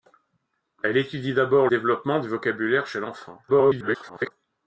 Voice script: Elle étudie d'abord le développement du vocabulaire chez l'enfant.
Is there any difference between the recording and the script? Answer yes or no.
yes